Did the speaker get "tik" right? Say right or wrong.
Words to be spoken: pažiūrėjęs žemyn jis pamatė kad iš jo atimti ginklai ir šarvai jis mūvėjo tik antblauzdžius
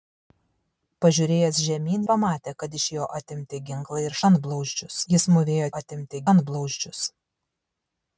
wrong